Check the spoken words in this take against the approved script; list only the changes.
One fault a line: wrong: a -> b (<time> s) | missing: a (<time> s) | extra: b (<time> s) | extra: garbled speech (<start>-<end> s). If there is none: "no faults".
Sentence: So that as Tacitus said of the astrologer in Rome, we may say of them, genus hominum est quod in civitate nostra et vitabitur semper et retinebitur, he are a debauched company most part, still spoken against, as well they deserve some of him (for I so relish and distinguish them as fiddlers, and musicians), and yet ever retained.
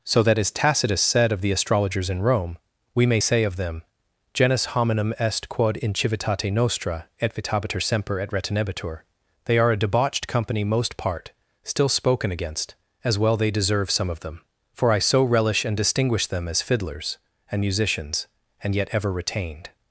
wrong: astrologer -> astrologers (1.5 s)
wrong: he -> they (9.4 s)
wrong: him -> them (14.2 s)